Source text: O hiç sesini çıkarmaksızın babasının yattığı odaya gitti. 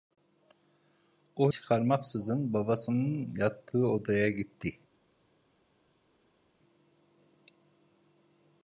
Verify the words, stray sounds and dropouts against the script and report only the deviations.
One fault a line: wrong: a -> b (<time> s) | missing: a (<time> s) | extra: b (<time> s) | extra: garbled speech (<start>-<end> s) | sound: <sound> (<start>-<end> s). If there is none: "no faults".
missing: hiç sesini (1.5 s)